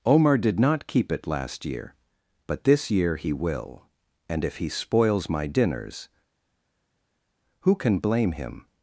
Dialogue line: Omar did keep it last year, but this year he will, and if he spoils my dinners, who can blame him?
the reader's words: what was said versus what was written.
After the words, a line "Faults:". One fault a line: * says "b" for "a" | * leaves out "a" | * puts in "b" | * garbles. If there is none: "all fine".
Omar did not keep it last year, but this year he will, and if he spoils my dinners, who can blame him?
Faults:
* puts in "not"